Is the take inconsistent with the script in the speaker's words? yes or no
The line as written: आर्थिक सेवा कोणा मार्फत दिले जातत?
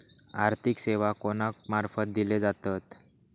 no